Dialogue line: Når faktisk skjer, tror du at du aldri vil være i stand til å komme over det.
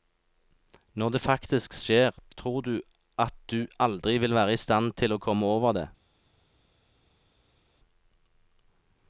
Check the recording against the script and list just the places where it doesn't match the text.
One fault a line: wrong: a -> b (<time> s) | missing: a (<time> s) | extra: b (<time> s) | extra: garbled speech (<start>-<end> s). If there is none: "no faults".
extra: det (1.1 s)